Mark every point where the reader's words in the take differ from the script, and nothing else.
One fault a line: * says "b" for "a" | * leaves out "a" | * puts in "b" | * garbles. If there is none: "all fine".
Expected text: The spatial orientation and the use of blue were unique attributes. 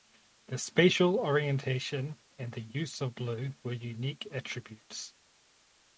all fine